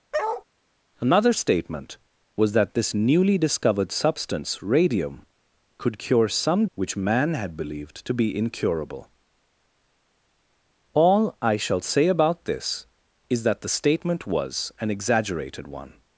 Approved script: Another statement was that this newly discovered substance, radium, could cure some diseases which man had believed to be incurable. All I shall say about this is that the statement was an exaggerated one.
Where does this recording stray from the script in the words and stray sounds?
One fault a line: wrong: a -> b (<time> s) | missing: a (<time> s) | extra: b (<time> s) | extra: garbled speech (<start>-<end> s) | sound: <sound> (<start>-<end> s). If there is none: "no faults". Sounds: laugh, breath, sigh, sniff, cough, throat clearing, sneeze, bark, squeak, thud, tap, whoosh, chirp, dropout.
sound: bark (0.1-0.4 s)
missing: diseases (6.7 s)